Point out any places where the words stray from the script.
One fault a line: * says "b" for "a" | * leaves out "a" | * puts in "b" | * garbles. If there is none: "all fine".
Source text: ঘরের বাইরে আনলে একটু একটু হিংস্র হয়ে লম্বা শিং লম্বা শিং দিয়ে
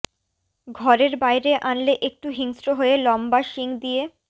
* leaves out "একটু"
* leaves out "লম্বা শিং"